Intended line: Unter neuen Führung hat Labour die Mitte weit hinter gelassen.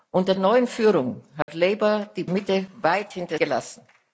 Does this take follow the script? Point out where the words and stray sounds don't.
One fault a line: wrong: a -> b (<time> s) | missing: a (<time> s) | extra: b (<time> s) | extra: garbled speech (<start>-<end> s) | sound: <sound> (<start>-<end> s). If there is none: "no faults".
sound: dropout (1.4-1.5 s)